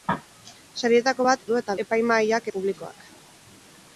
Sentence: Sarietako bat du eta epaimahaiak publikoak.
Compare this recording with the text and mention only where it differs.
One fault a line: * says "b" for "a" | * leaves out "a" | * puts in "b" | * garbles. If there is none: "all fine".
all fine